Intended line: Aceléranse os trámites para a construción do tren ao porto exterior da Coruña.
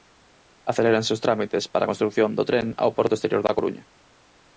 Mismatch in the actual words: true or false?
false